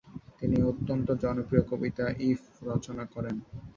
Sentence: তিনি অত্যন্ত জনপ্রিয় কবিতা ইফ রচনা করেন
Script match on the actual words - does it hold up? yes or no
yes